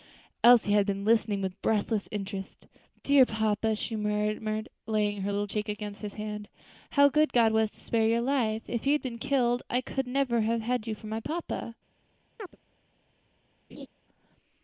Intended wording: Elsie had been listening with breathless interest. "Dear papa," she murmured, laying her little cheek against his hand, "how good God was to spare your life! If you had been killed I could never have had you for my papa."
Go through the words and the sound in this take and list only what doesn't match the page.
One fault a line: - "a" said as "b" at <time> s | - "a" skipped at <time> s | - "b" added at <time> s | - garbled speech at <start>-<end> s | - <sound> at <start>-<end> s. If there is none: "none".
- chirp at 12.4-12.6 s
- laugh at 13.7-13.9 s